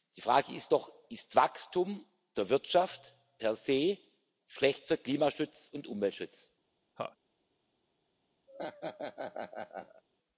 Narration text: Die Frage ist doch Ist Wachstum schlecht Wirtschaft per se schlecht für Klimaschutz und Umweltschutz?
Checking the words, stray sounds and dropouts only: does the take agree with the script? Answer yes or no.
no